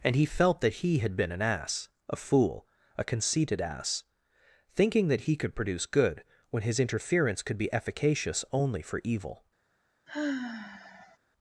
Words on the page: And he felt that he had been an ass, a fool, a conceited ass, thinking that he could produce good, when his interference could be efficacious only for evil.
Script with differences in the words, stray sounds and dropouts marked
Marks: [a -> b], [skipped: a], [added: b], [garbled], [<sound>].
And he felt that he had been an ass, a fool, a conceited ass, thinking that he could produce good, when his interference could be efficacious only for evil. [sigh]